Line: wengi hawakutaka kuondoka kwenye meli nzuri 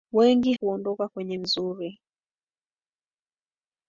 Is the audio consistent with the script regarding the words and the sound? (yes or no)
no